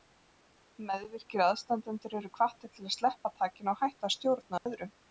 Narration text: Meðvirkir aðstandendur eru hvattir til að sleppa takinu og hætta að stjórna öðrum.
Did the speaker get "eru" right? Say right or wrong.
right